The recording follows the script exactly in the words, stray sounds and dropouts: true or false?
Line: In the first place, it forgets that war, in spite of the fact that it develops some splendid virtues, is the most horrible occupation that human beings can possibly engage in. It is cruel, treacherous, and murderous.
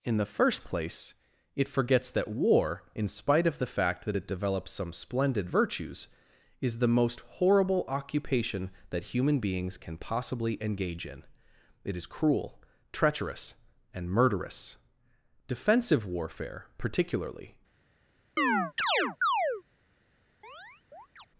false